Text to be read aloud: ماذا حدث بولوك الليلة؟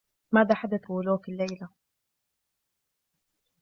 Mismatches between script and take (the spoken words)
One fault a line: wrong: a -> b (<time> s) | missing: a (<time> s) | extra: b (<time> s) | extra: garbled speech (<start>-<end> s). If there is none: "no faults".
no faults